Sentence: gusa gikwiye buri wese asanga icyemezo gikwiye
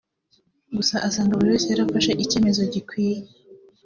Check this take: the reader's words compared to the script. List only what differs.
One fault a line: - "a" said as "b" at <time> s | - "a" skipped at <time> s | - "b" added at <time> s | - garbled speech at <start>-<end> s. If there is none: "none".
- "gikwiye" said as "asanga" at 1.1 s
- "asanga" said as "yarafashe" at 1.7 s